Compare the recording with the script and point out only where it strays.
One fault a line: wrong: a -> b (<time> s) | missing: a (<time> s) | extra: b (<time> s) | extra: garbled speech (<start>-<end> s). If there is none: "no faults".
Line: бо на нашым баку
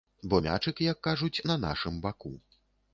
extra: мячык як кажуць (0.5 s)